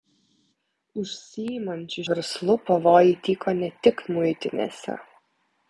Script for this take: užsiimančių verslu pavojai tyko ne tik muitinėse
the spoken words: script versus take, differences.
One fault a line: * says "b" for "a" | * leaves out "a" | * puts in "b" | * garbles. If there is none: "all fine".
all fine